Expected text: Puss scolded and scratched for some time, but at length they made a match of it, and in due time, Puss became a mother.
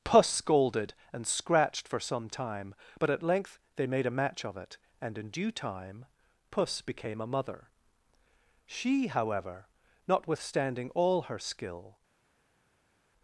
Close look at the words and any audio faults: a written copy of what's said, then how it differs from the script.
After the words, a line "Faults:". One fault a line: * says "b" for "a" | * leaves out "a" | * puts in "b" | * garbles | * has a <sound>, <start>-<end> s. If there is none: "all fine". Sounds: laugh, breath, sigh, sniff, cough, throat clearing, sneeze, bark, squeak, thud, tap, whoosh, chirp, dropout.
Puss scolded and scratched for some time, but at length they made a match of it, and in due time, Puss became a mother. She however, notwithstanding all her skill
Faults:
* puts in "She however notwithstanding all her skill"